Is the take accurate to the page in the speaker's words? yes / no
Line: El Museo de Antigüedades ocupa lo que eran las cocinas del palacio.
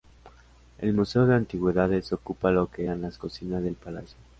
yes